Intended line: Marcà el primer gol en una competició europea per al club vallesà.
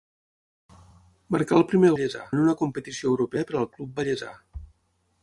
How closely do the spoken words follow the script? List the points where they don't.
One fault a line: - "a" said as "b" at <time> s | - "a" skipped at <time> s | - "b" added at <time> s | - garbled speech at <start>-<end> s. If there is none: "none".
- "gol" said as "vallesà" at 1.9 s